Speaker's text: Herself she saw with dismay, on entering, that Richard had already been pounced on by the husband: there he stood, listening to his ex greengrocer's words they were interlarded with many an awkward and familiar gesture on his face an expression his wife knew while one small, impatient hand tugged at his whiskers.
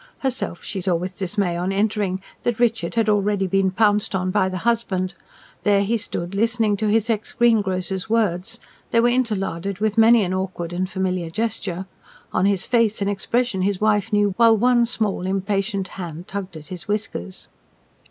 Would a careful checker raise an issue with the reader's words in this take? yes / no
no